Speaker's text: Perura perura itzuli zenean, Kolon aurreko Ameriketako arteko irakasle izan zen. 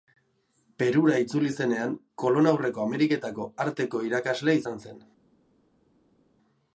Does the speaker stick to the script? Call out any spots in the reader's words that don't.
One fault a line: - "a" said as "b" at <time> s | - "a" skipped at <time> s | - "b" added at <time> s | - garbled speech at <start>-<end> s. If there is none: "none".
- "perura" skipped at 1.2 s